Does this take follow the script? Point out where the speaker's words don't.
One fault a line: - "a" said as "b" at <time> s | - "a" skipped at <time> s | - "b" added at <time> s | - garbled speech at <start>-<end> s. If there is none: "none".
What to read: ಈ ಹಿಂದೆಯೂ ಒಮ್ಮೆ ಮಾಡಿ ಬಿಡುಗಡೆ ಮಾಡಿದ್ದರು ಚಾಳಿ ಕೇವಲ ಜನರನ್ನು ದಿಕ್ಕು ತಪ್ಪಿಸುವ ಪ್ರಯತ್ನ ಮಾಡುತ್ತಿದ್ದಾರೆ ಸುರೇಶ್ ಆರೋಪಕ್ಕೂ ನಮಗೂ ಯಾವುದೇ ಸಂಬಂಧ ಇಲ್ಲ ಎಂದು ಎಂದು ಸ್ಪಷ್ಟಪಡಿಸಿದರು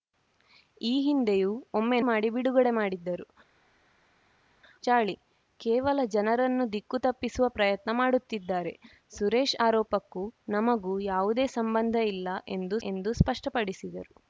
none